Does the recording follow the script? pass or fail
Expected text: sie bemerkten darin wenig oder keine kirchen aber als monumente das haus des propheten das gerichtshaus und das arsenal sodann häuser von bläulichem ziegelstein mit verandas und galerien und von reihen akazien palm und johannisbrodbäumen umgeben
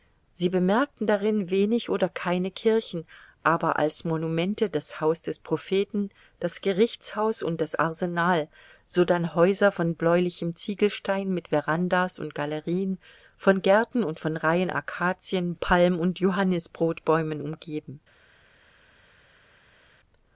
fail